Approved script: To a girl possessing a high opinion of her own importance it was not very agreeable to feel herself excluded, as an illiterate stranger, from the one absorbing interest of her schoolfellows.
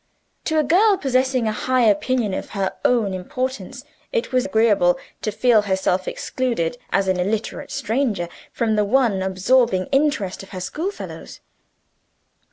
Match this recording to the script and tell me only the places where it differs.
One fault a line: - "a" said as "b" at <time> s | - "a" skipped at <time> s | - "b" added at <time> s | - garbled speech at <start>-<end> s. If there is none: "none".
- "not very" skipped at 4.5 s